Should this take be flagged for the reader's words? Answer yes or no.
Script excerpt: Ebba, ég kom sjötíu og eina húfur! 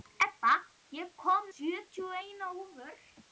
no